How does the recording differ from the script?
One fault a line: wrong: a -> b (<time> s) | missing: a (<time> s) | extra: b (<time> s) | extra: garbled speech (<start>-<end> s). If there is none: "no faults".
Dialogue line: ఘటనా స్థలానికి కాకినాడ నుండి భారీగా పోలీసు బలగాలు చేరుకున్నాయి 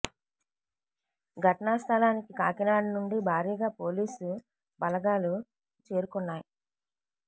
no faults